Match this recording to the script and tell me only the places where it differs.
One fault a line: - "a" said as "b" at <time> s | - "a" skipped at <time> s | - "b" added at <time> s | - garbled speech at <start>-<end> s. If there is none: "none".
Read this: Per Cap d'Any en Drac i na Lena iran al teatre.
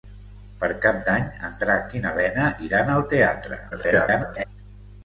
- garbled speech at 3.7-4.4 s